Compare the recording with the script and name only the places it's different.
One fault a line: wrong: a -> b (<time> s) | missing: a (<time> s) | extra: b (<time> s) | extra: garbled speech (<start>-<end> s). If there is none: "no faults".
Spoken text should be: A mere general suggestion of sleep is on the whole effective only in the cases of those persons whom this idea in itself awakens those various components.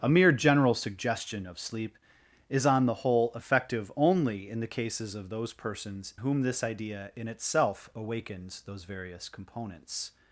no faults